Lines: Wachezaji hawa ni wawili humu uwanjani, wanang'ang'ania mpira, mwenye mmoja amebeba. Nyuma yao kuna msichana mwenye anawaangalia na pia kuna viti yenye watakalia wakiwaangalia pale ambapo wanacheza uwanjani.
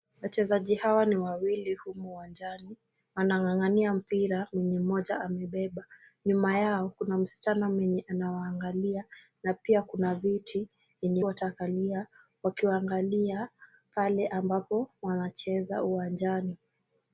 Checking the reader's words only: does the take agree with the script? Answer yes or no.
yes